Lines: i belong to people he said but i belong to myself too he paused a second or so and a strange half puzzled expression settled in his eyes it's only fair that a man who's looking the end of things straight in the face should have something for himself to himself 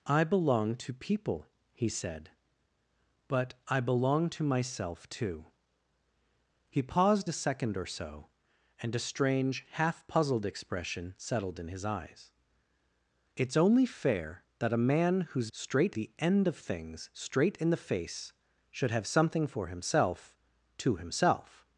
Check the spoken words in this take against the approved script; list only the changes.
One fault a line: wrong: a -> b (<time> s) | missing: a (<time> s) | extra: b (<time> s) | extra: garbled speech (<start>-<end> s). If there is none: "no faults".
wrong: looking -> straight (15.5 s)